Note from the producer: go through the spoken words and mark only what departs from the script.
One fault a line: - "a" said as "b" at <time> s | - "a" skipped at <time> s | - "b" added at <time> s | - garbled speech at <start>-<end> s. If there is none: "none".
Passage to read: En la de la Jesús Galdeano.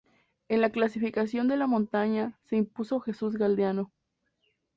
- "clasificación" added at 0.7 s
- "montaña se impuso" added at 1.7 s